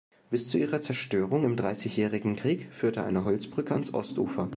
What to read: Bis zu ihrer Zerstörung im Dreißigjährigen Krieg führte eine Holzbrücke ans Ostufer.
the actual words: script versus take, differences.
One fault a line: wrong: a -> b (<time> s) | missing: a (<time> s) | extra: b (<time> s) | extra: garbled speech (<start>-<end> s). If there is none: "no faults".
no faults